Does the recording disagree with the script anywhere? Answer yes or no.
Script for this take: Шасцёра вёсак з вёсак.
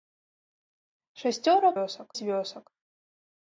no